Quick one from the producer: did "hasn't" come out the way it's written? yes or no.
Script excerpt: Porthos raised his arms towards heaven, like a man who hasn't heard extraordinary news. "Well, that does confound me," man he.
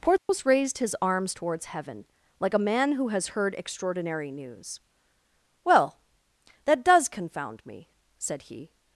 no